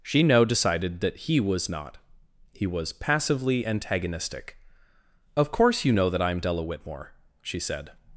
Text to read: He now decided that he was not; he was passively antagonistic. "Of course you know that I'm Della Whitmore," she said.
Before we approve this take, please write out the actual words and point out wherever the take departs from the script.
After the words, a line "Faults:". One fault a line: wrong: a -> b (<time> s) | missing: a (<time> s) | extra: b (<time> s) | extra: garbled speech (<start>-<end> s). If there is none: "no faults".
She now decided that he was not; he was passively antagonistic. "Of course you know that I'm Della Whitmore," she said.
Faults:
wrong: He -> She (0.0 s)